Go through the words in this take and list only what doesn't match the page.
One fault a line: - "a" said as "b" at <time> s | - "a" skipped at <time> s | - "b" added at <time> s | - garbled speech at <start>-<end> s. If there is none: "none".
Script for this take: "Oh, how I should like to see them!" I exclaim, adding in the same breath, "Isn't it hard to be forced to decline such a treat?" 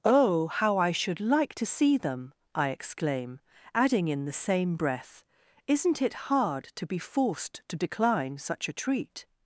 none